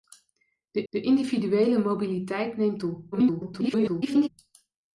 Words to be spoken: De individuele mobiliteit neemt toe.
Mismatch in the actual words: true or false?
true